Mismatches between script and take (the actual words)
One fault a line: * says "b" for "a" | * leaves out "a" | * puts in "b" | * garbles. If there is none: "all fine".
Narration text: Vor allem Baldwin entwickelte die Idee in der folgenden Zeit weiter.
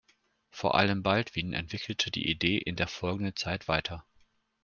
all fine